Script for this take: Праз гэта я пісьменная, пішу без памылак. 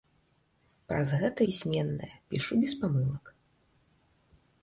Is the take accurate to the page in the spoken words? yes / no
no